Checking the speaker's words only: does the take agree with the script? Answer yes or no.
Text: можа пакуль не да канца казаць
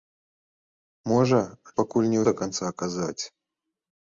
yes